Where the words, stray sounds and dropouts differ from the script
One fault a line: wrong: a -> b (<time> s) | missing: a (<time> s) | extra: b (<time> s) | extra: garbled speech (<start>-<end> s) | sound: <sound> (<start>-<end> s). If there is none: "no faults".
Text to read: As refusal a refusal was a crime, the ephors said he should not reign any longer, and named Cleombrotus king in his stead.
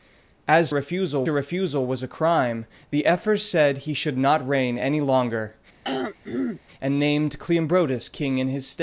sound: throat clearing (5.8-6.6 s)